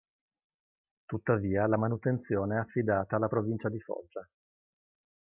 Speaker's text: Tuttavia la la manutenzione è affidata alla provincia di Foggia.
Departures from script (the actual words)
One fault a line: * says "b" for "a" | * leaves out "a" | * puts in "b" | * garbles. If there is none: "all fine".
* leaves out "la"